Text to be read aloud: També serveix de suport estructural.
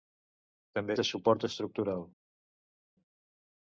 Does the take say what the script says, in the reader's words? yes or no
no